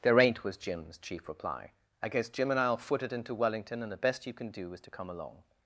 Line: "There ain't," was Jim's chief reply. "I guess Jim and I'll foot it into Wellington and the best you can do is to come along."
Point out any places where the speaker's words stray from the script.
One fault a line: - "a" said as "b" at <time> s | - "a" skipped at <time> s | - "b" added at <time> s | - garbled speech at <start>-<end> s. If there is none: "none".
none